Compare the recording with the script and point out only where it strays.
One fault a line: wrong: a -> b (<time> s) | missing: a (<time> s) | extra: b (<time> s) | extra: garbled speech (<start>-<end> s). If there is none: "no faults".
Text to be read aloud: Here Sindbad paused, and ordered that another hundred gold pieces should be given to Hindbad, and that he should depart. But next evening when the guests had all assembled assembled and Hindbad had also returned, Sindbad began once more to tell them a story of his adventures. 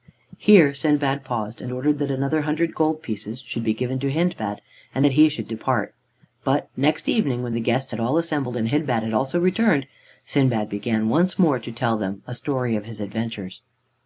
missing: assembled (8.6 s)